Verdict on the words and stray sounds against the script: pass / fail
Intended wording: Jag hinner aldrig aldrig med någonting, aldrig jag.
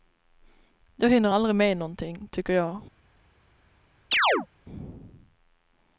fail